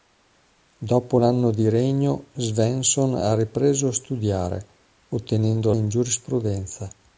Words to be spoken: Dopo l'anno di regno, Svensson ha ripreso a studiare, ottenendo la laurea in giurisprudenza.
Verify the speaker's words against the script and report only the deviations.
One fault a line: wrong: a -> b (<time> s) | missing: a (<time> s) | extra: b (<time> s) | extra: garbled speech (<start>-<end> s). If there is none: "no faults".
missing: la laurea (5.7 s)